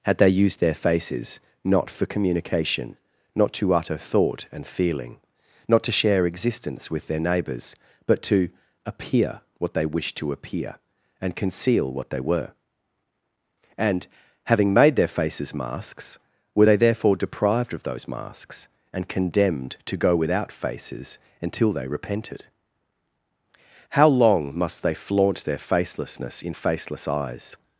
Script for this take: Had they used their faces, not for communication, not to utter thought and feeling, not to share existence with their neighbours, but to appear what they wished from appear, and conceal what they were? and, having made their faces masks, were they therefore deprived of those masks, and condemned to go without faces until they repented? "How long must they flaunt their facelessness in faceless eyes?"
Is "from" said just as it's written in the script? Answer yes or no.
no